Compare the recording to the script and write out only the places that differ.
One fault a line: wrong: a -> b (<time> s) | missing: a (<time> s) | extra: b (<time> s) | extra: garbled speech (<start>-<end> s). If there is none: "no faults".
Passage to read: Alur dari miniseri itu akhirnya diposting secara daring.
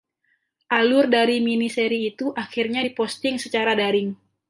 no faults